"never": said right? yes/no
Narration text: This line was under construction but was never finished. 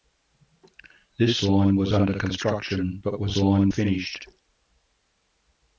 no